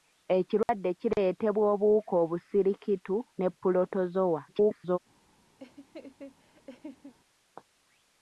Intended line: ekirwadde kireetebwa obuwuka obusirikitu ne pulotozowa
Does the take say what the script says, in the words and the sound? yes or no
no